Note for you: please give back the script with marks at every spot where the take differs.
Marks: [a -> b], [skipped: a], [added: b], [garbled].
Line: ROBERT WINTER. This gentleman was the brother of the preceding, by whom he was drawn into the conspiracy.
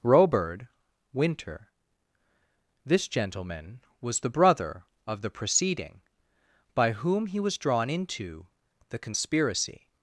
ROBERT WINTER. This gentleman was the brother of the preceding, by whom he was drawn into the conspiracy.